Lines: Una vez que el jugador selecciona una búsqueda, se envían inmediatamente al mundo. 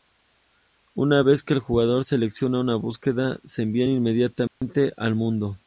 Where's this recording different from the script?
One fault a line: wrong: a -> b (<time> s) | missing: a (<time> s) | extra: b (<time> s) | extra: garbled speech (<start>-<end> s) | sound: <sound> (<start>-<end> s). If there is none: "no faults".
sound: dropout (4.5-4.6 s)